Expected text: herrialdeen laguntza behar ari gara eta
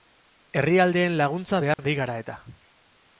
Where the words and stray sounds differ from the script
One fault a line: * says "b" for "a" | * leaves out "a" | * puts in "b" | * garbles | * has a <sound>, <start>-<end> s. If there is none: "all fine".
* has a dropout, 1.7-1.8 s